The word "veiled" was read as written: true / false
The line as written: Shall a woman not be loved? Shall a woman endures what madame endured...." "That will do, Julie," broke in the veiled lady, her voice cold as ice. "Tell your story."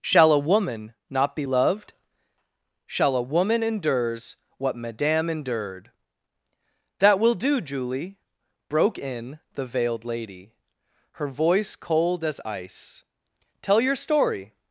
true